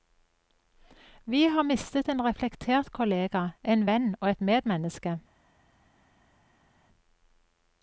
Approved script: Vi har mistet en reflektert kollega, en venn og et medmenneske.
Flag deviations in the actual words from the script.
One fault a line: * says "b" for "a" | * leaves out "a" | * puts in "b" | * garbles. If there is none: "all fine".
all fine